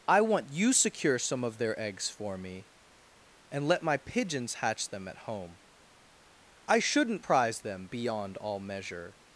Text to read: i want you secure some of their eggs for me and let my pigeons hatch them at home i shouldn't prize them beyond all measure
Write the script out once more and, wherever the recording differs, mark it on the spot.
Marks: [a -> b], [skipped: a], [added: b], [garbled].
i want you secure some of their eggs for me and let my pigeons hatch them at home i shouldn't prize them beyond all measure